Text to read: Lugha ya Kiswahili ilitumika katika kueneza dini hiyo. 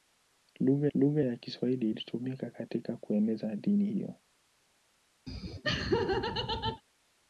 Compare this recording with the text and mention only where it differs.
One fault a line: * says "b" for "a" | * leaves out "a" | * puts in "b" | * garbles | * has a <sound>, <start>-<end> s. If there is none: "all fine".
* puts in "lugha"
* has a laugh, 5.3-6.8 s